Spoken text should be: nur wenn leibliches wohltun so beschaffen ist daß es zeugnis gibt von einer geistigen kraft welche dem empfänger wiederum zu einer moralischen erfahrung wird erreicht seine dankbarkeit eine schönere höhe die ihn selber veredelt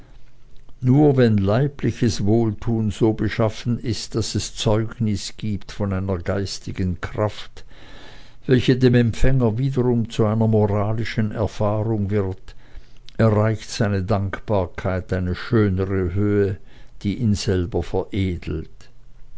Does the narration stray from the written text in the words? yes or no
no